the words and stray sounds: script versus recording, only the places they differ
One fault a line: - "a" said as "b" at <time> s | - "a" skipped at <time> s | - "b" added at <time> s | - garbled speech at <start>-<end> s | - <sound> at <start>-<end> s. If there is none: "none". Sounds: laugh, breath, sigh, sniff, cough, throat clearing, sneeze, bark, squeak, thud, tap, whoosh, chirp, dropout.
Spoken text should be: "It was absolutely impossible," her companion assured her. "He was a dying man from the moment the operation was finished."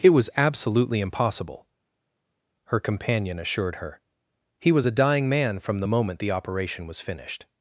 none